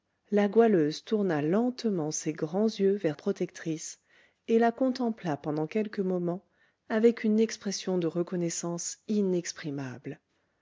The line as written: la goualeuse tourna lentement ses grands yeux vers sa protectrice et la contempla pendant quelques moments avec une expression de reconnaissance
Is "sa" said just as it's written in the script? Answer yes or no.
no